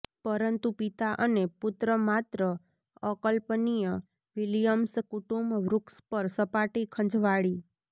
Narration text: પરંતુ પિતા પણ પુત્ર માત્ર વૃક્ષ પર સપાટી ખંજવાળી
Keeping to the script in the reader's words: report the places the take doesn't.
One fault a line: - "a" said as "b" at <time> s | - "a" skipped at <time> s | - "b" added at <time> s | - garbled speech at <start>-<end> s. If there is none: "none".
- "પણ" said as "અને" at 1.2 s
- "અકલ્પનીય વિલિયમ્સ કુટુંબ" added at 3.0 s